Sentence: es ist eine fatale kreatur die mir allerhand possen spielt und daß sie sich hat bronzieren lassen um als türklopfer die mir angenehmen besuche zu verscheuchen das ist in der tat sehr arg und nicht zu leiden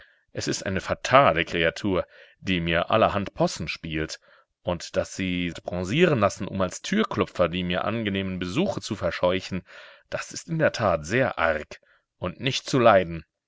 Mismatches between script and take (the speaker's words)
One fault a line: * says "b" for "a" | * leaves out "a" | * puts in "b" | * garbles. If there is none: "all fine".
* leaves out "sich"